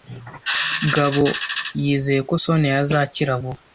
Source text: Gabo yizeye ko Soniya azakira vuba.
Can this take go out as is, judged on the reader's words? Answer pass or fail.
pass